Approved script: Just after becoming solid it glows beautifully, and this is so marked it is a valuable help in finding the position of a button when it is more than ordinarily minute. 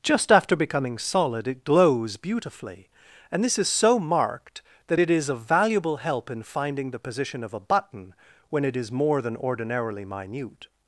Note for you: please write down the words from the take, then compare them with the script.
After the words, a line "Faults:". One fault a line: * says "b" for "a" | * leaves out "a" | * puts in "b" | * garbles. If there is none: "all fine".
Just after becoming solid it glows beautifully, and this is so marked that it is a valuable help in finding the position of a button when it is more than ordinarily minute.
Faults:
* puts in "that"